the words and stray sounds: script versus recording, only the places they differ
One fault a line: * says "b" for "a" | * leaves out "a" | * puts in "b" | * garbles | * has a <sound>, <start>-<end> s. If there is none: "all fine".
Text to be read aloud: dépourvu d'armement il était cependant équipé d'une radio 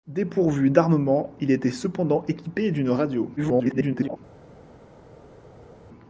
* garbles